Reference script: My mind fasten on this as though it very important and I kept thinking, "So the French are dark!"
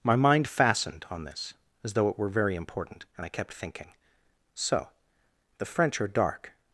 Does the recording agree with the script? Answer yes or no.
no